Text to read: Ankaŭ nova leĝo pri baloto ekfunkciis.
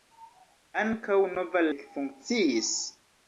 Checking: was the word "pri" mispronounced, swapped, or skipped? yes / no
yes